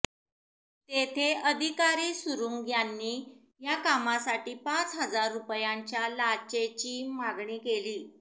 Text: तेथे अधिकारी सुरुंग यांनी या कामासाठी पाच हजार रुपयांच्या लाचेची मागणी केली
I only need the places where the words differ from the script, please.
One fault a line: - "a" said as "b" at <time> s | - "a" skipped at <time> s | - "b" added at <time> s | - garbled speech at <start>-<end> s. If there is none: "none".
none